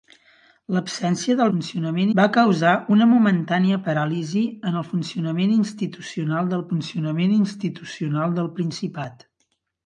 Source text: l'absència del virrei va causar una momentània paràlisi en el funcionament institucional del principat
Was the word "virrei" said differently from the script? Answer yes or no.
yes